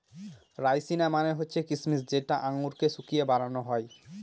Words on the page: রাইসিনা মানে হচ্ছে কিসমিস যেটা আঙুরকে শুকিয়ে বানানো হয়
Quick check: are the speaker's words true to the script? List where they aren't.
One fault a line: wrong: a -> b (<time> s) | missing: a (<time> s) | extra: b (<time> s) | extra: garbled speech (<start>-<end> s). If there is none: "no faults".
no faults